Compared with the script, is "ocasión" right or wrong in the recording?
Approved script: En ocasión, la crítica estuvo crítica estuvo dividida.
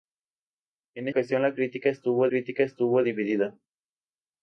right